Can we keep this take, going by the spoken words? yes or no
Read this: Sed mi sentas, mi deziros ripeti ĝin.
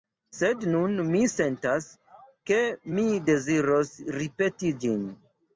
no